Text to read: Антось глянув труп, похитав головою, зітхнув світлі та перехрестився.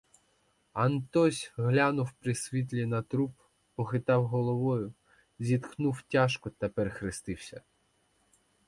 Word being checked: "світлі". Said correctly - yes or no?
no